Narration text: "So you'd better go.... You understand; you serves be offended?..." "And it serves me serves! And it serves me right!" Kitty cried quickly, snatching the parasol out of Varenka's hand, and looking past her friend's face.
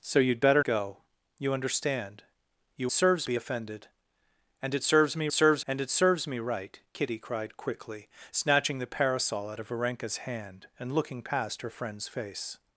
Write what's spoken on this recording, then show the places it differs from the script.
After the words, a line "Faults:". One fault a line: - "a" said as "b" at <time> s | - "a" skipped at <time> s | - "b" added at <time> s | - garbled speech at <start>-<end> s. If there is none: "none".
"So you'd better go.... You understand; you serves be offended?..." "And it serves me serves! And it serves me right!" Kitty cried quickly, snatching the parasol out of Varenka's hand, and looking past her friend's face.
Faults:
none